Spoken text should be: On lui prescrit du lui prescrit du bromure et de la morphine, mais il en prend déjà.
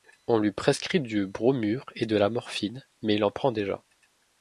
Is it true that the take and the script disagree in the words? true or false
true